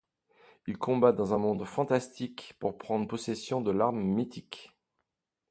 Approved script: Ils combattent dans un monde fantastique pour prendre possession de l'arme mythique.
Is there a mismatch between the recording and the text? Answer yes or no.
no